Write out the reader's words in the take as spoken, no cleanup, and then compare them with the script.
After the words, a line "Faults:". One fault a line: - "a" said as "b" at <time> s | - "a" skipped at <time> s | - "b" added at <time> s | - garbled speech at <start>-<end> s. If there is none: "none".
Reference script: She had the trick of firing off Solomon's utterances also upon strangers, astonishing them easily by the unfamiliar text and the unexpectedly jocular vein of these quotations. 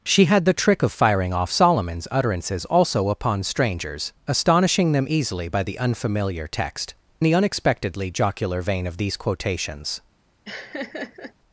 She had the trick of firing off Solomon's utterances also upon strangers, astonishing them easily by the unfamiliar text the unexpectedly jocular vein of these quotations.
Faults:
- "and" skipped at 7.0 s